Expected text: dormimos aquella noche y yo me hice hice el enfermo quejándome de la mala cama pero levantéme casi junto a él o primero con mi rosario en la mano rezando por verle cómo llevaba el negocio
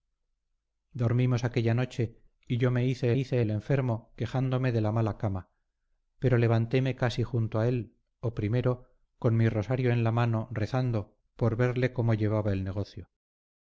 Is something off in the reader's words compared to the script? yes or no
no